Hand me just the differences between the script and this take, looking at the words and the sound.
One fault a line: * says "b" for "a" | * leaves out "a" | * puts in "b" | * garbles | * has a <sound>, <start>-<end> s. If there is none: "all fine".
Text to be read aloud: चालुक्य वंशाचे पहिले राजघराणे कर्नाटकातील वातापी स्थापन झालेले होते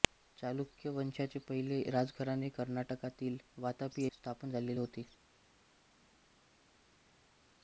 all fine